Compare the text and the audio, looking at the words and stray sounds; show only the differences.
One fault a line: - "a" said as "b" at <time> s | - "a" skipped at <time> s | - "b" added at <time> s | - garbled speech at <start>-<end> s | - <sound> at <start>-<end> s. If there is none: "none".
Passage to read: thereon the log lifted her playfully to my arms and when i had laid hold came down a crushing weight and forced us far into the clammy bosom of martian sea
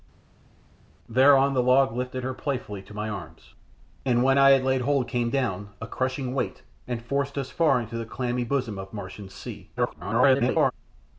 - garbled speech at 9.8-10.7 s